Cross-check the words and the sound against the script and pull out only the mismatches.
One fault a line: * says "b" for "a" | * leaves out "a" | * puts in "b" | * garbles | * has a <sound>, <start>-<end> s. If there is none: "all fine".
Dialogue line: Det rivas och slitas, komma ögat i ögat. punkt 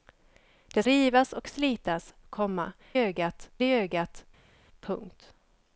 all fine